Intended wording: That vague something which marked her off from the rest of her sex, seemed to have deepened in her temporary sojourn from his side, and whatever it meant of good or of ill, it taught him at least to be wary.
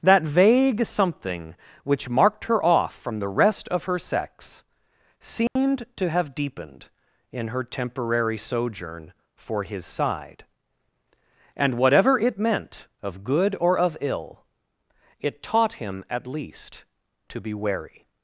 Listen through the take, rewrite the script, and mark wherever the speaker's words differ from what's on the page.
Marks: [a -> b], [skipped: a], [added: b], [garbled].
That vague something which marked her off from the rest of her sex, seemed to have deepened in her temporary sojourn [from -> for] his side, and whatever it meant of good or of ill, it taught him at least to be wary.